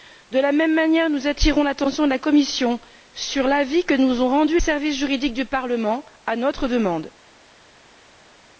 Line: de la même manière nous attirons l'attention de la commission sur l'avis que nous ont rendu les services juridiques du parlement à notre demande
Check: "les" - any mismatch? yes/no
yes